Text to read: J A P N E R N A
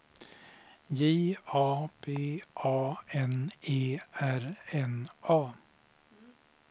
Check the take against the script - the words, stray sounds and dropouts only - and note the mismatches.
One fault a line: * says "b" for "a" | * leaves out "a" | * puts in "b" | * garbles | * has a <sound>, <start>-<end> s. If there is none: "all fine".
* puts in "A"